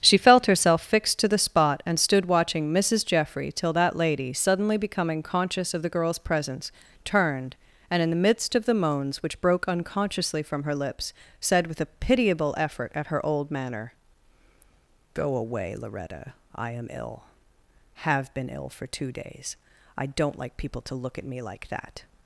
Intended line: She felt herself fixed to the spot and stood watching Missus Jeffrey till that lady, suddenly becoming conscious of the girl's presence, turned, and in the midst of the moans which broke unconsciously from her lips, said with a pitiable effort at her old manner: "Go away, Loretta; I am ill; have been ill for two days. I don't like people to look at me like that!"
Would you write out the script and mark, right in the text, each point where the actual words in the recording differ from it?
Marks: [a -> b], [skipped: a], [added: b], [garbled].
She felt herself fixed to the spot and stood watching Missus Jeffrey till that lady, suddenly becoming conscious of the girl's presence, turned, and in the midst of the moans which broke unconsciously from her lips, said with a pitiable effort at her old manner: "Go away, Loretta; I am ill; have been ill for two days. I don't like people to look at me like that!"